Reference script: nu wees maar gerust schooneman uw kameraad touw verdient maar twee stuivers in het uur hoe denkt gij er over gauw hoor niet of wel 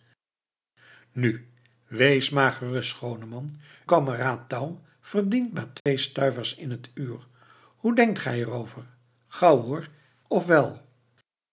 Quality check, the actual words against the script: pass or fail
fail